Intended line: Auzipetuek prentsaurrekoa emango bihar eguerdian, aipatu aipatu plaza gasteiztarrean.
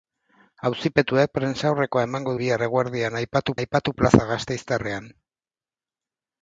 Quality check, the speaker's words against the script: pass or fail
pass